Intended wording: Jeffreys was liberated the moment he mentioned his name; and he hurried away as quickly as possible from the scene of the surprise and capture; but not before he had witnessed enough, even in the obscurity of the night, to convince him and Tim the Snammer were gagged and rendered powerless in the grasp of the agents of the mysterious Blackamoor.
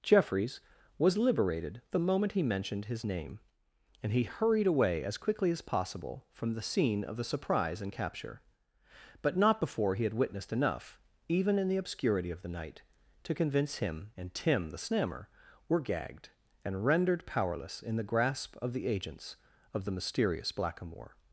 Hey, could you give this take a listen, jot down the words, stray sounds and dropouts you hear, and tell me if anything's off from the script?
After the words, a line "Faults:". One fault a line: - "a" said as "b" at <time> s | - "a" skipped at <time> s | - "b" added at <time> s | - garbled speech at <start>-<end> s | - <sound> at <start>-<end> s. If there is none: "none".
Jeffreys was liberated the moment he mentioned his name; and he hurried away as quickly as possible from the scene of the surprise and capture; but not before he had witnessed enough, even in the obscurity of the night, to convince him and Tim the Snammer were gagged and rendered powerless in the grasp of the agents of the mysterious Blackamoor.
Faults:
none